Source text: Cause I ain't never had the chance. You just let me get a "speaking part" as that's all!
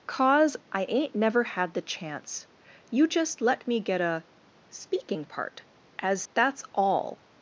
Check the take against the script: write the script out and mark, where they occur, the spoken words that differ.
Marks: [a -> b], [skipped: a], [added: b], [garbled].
Cause I ain't never had the chance. You just let me get a "speaking part" as that's all!